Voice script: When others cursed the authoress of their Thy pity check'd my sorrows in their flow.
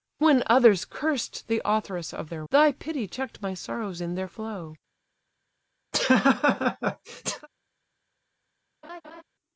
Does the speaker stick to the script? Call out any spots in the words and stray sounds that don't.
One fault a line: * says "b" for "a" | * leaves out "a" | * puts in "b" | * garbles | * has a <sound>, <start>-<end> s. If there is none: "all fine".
* has a laugh, 5.9-7.5 s
* has a laugh, 8.8-9.2 s